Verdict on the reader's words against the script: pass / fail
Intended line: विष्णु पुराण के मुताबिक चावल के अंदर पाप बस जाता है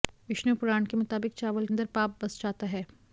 fail